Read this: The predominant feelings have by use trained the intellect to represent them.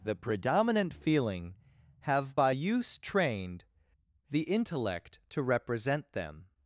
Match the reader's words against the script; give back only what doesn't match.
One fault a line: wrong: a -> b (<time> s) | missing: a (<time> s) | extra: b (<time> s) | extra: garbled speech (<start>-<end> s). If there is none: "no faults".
wrong: feelings -> feeling (0.9 s)